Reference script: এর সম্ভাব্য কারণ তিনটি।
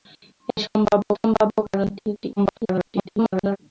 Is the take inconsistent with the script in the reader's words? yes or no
yes